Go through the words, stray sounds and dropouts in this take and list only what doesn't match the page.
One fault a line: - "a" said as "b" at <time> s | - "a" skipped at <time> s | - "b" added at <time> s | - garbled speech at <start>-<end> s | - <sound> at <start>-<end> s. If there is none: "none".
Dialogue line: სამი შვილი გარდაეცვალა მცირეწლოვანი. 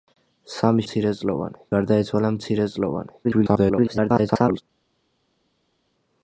- "შვილი" said as "მცირეწლოვანი" at 0.8 s
- garbled speech at 3.2-4.6 s